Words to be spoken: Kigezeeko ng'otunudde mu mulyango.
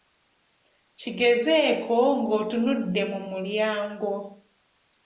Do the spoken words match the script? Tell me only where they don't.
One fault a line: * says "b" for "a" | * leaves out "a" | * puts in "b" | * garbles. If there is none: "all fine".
all fine